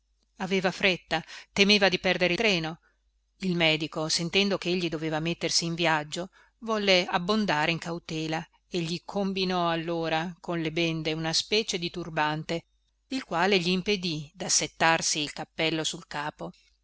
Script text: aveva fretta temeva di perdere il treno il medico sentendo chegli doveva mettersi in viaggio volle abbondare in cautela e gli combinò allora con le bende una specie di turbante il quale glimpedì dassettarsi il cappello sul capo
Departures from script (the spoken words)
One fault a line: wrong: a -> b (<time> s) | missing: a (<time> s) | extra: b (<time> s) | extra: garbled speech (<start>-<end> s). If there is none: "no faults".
missing: il (2.3 s)